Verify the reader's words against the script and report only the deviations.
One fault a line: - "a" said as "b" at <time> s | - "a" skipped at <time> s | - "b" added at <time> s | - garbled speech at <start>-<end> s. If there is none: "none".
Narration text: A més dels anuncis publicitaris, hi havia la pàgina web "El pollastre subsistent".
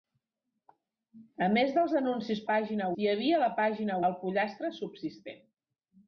- "publicitaris" said as "pàgina" at 2.5 s
- "web" skipped at 4.0 s